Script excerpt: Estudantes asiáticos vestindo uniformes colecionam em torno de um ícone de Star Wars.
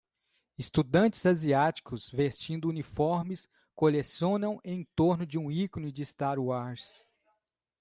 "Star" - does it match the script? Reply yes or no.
yes